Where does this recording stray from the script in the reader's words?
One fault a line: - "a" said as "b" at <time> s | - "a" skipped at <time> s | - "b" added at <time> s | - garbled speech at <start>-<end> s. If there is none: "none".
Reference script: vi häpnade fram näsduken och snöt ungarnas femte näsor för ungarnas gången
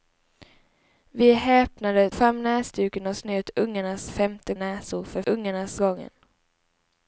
none